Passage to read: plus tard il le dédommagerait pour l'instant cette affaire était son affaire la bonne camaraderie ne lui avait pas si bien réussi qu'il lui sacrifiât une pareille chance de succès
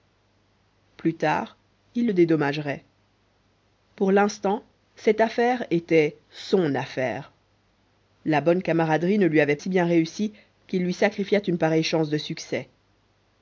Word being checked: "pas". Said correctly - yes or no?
no